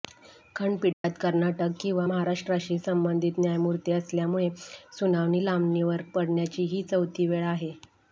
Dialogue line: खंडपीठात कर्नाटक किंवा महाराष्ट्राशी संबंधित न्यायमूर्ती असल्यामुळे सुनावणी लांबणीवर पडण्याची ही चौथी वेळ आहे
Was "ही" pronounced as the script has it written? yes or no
yes